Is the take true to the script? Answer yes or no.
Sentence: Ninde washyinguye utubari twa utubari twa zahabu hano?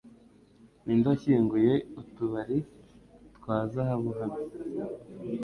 no